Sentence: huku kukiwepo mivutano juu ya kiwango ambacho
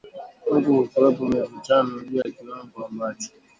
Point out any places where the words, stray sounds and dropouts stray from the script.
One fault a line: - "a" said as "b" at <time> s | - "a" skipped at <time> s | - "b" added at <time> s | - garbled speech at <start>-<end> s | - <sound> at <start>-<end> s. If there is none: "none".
- dropout at 2.2-2.3 s